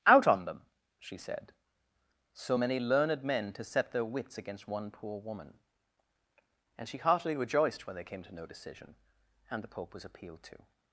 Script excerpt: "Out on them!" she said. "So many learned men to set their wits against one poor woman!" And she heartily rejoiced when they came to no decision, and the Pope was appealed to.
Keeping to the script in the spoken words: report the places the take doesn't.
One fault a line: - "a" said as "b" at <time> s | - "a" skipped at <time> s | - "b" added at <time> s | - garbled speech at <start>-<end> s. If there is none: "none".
none